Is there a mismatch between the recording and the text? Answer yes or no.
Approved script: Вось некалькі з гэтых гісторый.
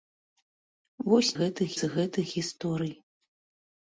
yes